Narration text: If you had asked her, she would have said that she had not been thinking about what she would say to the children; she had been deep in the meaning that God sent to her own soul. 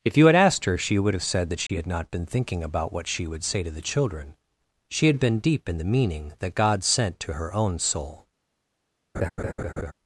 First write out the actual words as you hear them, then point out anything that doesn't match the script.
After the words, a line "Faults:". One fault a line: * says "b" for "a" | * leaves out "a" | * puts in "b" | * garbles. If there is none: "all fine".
If you had asked her, she would have said that she had not been thinking about what she would say to the children; she had been deep in the meaning that God sent to her own soul.
Faults:
all fine